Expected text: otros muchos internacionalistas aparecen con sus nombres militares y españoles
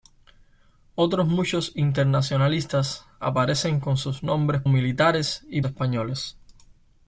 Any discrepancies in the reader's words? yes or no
no